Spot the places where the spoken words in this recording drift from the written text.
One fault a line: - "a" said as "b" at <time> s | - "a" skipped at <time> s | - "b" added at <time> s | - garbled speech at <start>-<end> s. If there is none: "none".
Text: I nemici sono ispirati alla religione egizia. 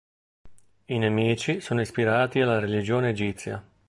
none